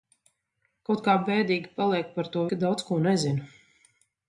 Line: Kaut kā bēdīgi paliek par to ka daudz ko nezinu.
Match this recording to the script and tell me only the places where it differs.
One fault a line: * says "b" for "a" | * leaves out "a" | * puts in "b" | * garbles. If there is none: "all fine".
all fine